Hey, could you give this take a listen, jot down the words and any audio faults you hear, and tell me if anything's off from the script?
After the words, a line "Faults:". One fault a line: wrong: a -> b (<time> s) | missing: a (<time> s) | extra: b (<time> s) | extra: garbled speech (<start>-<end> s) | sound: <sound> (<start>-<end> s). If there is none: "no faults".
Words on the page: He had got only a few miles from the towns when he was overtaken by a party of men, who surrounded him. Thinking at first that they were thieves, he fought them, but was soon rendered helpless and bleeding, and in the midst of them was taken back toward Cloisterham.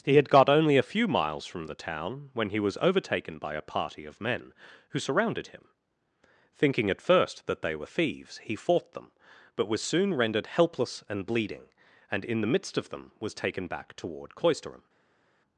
He had got only a few miles from the town when he was overtaken by a party of men, who surrounded him. Thinking at first that they were thieves, he fought them, but was soon rendered helpless and bleeding, and in the midst of them was taken back toward Cloisterham.
Faults:
wrong: towns -> town (1.8 s)